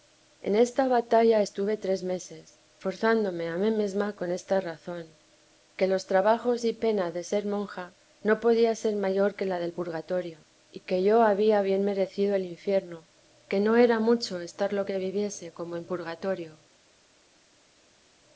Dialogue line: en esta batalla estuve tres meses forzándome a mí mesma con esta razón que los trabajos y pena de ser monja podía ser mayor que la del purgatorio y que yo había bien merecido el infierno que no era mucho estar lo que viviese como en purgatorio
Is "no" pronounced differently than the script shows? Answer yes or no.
no